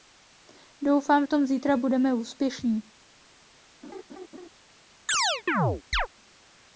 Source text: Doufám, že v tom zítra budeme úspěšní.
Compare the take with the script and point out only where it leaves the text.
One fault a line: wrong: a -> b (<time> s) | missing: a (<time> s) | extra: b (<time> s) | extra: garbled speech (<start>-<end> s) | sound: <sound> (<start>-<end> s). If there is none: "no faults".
missing: že (1.2 s)
sound: laugh (3.8-4.5 s)
sound: chirp (5.1-6.1 s)